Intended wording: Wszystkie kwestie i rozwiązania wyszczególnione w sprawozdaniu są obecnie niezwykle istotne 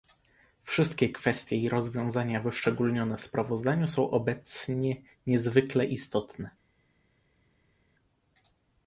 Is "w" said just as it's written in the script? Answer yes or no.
yes